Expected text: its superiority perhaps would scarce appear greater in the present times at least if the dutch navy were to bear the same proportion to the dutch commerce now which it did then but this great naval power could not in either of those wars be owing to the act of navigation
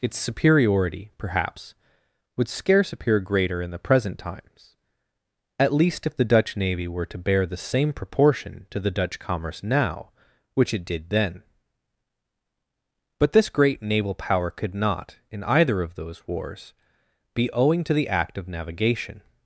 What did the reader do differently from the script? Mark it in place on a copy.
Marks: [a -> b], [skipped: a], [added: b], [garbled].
its superiority perhaps would scarce appear greater in the present times at least if the dutch navy were to bear the same proportion to the dutch commerce now which it did then but this great naval power could not in either of those wars be owing to the act of navigation